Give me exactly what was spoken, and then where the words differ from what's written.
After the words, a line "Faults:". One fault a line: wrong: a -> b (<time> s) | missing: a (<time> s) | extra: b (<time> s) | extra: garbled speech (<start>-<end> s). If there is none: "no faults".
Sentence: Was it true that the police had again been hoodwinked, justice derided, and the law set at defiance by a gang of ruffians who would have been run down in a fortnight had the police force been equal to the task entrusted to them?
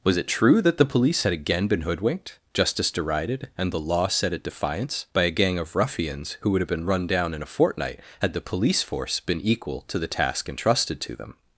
Was it true that the police had again been hoodwinked, justice derided, and the law set at defiance by a gang of ruffians who would have been run down in a fortnight had the police force been equal to the task entrusted to them?
Faults:
no faults